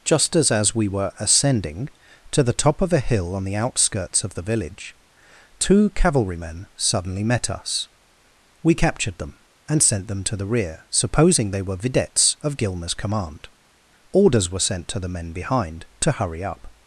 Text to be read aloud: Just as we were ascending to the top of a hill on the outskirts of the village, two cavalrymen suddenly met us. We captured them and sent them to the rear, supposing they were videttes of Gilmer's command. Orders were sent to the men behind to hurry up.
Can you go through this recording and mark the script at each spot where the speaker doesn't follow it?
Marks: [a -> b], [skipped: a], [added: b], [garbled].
Just as [added: as] we were ascending to the top of a hill on the outskirts of the village, two cavalrymen suddenly met us. We captured them and sent them to the rear, supposing they were videttes of Gilmer's command. Orders were sent to the men behind to hurry up.